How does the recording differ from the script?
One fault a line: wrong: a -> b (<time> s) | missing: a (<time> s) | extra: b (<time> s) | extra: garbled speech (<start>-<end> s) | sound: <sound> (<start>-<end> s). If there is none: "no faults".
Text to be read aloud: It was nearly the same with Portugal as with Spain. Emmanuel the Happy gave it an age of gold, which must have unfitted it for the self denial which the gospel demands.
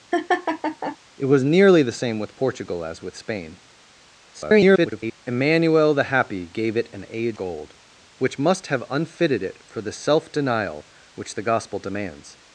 sound: laugh (0.1-1.0 s)
extra: garbled speech (4.3-5.2 s)
missing: of (7.4 s)